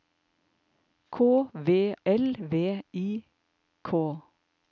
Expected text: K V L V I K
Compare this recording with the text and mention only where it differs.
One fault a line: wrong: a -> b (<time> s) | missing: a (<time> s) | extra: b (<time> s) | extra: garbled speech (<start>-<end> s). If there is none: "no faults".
no faults